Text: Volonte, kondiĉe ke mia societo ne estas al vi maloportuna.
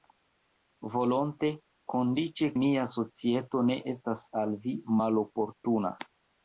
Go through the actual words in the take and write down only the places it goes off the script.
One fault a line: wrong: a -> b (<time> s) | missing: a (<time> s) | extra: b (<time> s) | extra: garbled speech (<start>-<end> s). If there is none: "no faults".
missing: ke (2.5 s)